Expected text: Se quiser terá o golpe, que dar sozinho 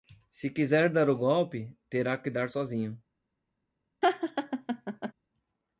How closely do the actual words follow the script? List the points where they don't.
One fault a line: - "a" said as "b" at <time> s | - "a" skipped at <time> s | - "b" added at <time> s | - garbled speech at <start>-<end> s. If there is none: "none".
- "terá" said as "dar" at 0.9 s
- "terá" added at 1.9 s